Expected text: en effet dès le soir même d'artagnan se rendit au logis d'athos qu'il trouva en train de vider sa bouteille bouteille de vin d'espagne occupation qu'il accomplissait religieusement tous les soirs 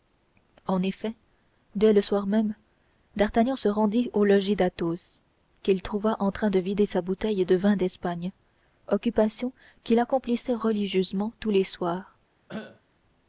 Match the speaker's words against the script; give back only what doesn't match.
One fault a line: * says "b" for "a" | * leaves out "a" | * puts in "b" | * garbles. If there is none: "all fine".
* leaves out "bouteille"